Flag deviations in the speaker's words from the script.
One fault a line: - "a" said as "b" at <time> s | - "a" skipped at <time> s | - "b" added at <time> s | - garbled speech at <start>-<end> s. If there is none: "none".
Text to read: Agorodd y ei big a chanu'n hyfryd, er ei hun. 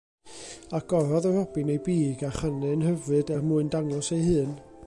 - "robin" added at 1.4 s
- "mwyn dangos" added at 3.5 s